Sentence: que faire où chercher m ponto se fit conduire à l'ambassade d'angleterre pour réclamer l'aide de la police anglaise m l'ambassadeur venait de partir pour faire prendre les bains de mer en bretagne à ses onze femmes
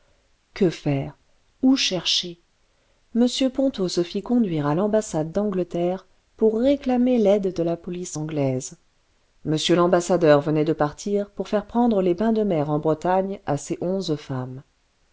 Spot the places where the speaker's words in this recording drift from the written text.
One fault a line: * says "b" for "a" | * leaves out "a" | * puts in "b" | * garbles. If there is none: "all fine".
all fine